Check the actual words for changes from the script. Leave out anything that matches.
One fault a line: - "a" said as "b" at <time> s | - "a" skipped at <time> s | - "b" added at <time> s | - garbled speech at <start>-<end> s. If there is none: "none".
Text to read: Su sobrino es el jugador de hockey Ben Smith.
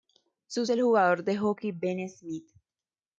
- "sobrino es" skipped at 0.7 s